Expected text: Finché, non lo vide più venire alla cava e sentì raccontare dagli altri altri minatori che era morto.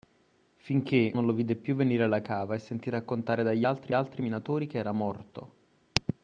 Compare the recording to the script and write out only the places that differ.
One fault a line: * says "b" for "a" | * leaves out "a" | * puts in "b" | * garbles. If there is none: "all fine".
all fine